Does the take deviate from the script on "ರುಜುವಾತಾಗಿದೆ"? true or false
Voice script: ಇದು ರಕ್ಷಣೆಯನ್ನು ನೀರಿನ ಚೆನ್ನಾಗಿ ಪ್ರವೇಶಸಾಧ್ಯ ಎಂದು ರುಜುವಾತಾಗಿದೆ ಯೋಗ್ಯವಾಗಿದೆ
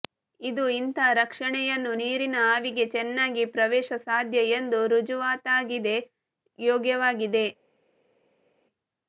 false